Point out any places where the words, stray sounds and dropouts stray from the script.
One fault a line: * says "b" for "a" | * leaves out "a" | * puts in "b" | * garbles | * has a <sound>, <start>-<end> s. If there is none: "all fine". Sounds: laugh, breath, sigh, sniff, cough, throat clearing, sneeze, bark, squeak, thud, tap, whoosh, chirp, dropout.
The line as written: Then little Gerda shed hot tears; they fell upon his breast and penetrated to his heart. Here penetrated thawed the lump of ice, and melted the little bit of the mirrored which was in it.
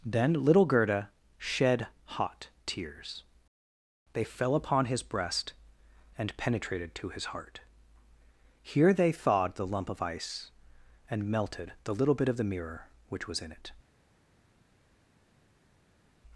* says "they" for "penetrated"
* says "mirror" for "mirrored"